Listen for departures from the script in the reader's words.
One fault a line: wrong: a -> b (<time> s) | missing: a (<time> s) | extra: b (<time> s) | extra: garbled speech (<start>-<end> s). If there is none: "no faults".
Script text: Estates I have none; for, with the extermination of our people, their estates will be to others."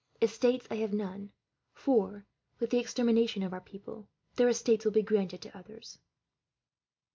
extra: granted (5.0 s)